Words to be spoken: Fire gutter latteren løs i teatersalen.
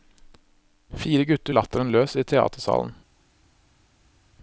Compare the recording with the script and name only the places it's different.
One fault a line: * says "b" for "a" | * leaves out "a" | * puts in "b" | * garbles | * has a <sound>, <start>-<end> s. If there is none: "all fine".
all fine